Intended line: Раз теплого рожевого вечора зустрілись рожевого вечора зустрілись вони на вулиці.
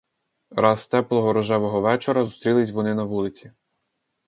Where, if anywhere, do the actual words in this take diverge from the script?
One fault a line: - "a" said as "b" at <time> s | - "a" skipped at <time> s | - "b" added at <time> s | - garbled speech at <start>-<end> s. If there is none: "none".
- "рожевого вечора зустрілись" skipped at 2.7 s